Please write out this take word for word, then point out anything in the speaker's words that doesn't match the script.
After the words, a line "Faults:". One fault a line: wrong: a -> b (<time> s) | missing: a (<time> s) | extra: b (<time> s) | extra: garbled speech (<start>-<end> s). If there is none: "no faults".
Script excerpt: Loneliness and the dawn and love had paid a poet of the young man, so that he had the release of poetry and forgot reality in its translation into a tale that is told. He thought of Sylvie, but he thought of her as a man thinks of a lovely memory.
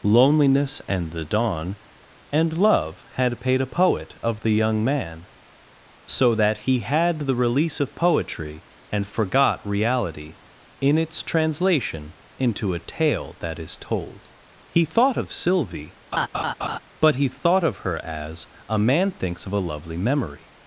Loneliness and the dawn and love had paid a poet of the young man, so that he had the release of poetry and forgot reality in its translation into a tale that is told. He thought of Sylvie, but he thought of her as a man thinks of a lovely memory.
Faults:
no faults